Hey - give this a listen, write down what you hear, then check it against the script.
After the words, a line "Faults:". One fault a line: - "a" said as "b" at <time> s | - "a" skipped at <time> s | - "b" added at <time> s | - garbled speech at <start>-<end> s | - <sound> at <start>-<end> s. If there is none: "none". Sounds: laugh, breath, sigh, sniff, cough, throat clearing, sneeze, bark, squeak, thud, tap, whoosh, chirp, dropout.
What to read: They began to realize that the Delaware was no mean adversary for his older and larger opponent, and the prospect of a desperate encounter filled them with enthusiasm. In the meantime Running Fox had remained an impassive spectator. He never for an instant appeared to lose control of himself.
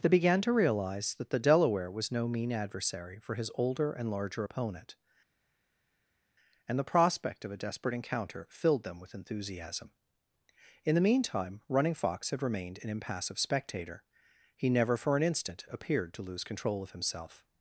They began to realize that the Delaware was no mean adversary for his older and larger opponent, and the prospect of a desperate encounter filled them with enthusiasm. In the meantime Running Fox had remained an impassive spectator. He never for an instant appeared to lose control of himself.
Faults:
none